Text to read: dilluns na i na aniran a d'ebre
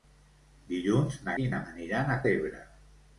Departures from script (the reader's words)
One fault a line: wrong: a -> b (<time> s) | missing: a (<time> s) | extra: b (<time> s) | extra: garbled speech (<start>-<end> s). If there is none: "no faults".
no faults